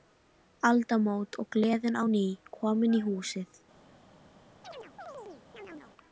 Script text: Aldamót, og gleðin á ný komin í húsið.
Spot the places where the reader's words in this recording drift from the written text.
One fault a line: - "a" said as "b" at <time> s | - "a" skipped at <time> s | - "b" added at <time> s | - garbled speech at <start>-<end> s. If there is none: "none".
none